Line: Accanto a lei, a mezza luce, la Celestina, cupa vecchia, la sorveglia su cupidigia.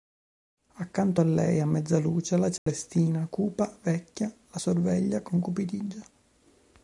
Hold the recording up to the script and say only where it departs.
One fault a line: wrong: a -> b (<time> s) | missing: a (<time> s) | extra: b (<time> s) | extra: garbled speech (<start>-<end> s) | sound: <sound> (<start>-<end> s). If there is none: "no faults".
sound: dropout (2.6-2.7 s)
wrong: su -> con (5.2 s)